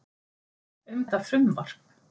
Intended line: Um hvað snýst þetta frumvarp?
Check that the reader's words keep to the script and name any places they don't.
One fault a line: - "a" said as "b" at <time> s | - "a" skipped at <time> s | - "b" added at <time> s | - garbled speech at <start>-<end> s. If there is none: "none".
- "hvað snýst" skipped at 1.1 s